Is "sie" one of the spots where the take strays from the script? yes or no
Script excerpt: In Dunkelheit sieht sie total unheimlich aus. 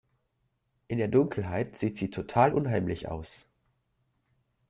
no